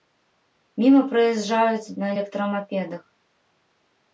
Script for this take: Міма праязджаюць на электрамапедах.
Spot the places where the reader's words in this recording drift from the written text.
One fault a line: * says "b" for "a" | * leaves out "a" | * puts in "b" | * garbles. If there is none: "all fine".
all fine